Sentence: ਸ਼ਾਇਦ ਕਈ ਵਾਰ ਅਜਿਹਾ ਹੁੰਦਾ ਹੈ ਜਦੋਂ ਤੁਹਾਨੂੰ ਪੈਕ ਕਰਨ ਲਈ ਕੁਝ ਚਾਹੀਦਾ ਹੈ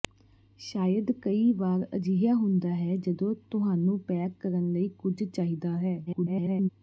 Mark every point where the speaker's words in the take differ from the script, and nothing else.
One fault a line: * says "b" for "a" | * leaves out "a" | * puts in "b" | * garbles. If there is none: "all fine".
* garbles